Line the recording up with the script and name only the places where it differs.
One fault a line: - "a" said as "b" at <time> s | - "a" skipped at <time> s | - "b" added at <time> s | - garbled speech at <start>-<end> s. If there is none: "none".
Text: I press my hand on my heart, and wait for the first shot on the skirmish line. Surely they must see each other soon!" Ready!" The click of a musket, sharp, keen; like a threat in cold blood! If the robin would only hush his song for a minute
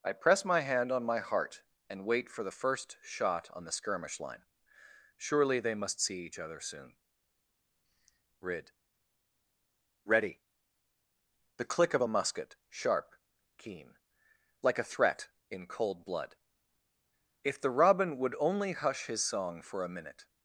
- "rid" added at 8.4 s